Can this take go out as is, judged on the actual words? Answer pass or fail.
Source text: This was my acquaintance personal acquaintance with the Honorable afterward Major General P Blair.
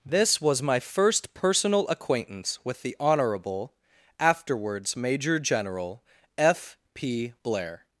fail